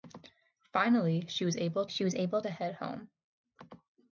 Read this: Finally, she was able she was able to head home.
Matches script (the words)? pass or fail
pass